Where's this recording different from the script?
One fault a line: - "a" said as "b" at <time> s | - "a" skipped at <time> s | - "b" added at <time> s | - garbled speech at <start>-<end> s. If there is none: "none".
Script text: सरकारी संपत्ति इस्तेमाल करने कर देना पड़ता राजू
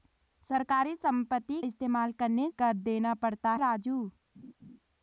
none